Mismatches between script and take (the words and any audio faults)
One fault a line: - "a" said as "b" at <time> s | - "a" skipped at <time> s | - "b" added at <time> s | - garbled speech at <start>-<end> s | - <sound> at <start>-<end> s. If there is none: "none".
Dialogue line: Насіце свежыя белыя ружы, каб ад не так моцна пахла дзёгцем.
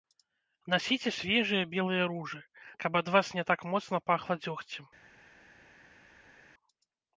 - "вас" added at 3.2 s